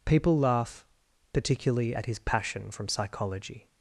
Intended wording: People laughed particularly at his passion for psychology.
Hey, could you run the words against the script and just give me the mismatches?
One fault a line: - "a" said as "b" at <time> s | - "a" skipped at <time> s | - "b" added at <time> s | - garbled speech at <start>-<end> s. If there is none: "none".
- "laughed" said as "laugh" at 0.4 s
- "for" said as "from" at 2.7 s